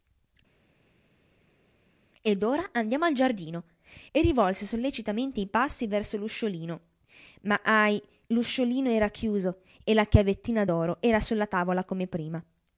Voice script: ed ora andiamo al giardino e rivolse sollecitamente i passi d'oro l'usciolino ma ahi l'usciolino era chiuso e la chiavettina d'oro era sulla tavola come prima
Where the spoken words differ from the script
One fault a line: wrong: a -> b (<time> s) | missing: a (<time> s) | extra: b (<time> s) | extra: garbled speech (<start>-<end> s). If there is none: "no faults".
wrong: d'oro -> verso (5.9 s)